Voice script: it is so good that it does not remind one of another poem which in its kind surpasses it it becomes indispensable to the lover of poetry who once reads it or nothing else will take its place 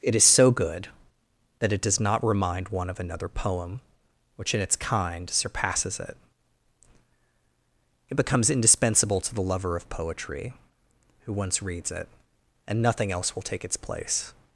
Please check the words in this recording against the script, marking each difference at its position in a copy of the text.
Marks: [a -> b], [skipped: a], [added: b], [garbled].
it is so good that it does not remind one of another poem which in its kind surpasses it it becomes indispensable to the lover of poetry who once reads it [or -> and] nothing else will take its place